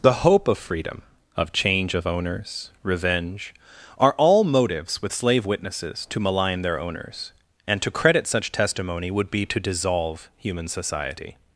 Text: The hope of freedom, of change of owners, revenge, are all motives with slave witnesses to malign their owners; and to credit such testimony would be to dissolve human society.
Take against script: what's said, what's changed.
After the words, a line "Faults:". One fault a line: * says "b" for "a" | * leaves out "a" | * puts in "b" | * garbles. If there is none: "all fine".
The hope of freedom, of change of owners, revenge, are all motives with slave witnesses to malign their owners; and to credit such testimony would be to dissolve human society.
Faults:
all fine